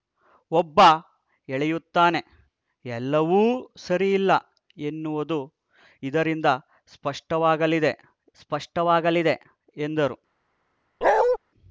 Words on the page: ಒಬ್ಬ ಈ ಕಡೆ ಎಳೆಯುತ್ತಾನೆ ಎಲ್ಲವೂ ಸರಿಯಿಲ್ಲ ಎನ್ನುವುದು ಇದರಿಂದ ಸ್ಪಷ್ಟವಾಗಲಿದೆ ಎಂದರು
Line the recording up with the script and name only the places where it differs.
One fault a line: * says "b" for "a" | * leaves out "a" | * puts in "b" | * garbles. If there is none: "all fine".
* leaves out "ಈ ಕಡೆ"
* puts in "ಸ್ಪಷ್ಟವಾಗಲಿದೆ"